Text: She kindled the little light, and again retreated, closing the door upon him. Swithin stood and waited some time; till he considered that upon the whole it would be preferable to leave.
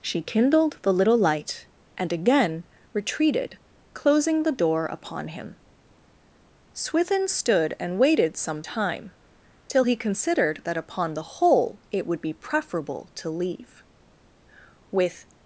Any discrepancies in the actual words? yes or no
yes